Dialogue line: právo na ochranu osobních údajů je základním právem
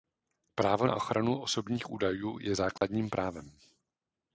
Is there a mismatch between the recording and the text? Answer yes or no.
no